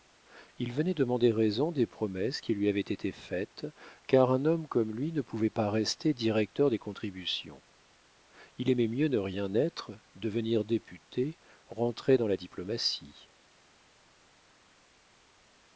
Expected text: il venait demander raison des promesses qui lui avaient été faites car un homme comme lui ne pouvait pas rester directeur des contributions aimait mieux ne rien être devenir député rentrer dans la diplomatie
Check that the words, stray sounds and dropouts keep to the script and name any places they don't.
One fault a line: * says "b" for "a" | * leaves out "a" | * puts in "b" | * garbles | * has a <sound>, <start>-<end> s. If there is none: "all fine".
* puts in "il"